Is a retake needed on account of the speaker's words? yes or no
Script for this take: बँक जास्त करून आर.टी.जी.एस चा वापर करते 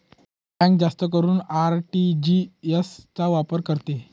no